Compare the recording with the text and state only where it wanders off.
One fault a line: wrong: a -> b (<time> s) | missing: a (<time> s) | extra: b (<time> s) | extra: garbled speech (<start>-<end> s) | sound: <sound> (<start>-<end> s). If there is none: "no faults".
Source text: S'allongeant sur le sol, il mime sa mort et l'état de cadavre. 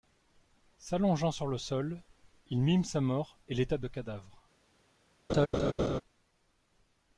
sound: laugh (5.3-6.0 s)